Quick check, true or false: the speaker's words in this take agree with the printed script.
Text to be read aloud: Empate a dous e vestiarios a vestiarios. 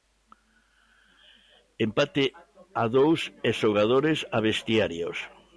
false